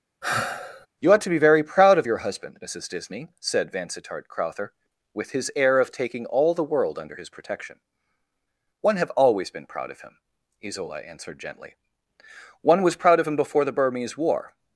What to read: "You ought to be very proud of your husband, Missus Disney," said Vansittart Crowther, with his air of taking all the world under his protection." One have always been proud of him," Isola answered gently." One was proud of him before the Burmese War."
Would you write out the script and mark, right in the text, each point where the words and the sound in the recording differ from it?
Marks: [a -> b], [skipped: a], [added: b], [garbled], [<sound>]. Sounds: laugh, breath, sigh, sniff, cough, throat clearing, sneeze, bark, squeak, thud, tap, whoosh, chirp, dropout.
[sigh] "You ought to be very proud of your husband, Missus Disney," said Vansittart Crowther, with his air of taking all the world under his protection." One have always been proud of him," Isola answered gently." One was proud of him before the Burmese War."